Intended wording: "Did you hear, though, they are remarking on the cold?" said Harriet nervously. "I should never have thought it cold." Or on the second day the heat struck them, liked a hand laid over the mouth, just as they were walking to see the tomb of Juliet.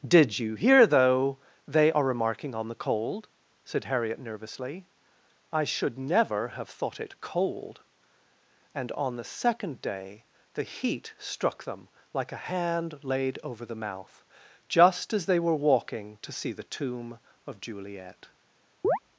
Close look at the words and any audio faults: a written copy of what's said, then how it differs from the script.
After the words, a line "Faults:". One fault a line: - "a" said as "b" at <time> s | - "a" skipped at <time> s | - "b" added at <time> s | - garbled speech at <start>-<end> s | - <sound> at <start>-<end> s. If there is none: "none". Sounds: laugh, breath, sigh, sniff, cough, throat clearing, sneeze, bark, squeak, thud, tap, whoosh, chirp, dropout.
"Did you hear, though, they are remarking on the cold?" said Harriet nervously. "I should never have thought it cold." And on the second day the heat struck them, like a hand laid over the mouth, just as they were walking to see the tomb of Juliet.
Faults:
- "Or" said as "And" at 8.8 s
- "liked" said as "like" at 12.1 s
- chirp at 18.8-19.0 s